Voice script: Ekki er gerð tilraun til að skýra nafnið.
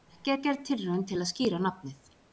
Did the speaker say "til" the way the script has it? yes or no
yes